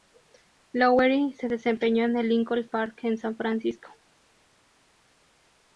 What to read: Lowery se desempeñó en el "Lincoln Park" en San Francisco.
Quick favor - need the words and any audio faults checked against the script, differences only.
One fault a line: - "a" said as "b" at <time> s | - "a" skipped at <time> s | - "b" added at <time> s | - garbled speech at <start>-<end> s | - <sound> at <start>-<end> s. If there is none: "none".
none